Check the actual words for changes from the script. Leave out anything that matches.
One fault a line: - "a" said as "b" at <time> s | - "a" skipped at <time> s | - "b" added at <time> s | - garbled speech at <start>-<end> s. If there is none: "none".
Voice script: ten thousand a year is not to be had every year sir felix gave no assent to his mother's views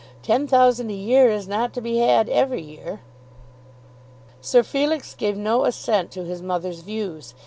none